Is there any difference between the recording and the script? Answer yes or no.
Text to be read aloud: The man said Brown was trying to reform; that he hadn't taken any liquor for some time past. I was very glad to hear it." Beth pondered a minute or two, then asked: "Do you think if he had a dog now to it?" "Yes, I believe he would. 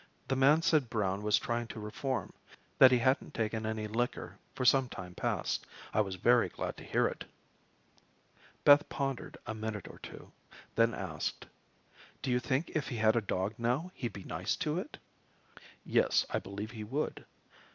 yes